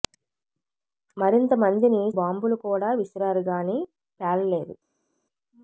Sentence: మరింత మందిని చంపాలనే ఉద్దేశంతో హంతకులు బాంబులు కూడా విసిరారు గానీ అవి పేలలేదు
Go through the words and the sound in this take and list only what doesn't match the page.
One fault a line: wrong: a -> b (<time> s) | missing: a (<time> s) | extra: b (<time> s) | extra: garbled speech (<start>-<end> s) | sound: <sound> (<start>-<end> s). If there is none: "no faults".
missing: చంపాలనే ఉద్దేశంతో హంతకులు (2.0 s)
missing: అవి (3.8 s)